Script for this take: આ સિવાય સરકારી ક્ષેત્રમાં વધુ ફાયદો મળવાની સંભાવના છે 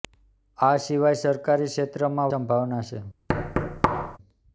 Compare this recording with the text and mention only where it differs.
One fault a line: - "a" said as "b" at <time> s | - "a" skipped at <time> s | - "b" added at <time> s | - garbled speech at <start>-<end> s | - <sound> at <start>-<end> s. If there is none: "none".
- "વધુ ફાયદો મળવાની" skipped at 2.3 s
- thud at 3.3-4.2 s